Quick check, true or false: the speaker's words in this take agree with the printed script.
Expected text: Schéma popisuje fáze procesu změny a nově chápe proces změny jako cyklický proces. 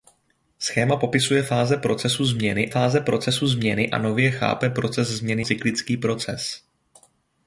false